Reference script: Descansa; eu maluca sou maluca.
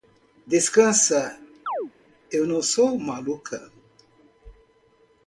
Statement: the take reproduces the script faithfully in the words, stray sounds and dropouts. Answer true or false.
false